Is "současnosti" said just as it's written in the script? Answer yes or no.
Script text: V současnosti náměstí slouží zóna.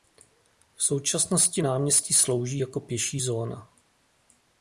yes